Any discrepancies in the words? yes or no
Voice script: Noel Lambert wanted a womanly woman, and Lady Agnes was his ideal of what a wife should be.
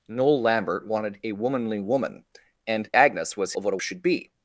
yes